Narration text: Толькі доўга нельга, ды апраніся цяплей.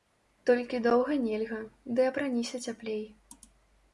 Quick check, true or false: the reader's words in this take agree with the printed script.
true